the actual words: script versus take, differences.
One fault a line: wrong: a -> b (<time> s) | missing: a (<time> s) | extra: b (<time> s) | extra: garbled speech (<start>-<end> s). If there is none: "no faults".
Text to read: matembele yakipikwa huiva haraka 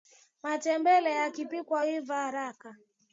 no faults